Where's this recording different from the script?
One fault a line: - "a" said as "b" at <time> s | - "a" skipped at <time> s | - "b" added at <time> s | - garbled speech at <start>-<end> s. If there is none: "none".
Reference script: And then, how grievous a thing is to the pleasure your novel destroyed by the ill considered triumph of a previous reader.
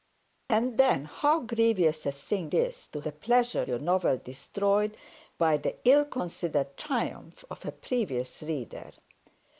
none